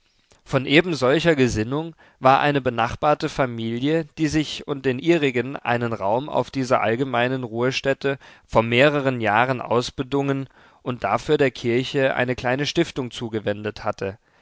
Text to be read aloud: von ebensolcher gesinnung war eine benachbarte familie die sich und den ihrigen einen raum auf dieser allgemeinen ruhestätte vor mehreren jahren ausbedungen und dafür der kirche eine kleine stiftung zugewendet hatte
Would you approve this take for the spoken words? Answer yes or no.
yes